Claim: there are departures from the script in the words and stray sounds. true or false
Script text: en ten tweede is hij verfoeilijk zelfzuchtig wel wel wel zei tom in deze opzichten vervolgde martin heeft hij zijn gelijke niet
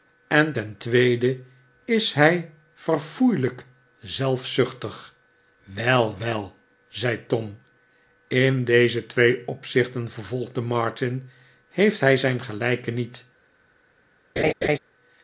true